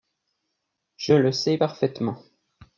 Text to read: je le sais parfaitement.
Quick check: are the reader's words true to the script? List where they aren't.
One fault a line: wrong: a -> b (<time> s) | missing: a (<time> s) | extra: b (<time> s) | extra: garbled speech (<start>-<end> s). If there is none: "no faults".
no faults